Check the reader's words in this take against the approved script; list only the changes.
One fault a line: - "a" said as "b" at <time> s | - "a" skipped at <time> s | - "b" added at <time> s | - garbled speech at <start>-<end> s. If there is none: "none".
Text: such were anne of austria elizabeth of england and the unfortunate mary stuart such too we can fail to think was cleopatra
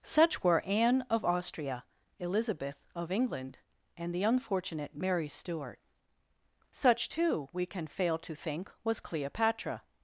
none